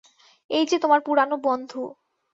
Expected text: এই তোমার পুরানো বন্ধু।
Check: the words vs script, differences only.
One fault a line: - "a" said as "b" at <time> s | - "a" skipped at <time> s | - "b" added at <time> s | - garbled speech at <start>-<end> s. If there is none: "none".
- "যে" added at 0.7 s